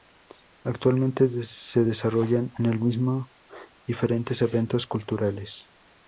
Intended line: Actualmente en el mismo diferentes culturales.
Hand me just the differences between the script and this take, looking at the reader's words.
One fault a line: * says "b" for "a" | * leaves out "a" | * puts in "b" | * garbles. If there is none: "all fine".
* puts in "se desarrollan"
* puts in "eventos"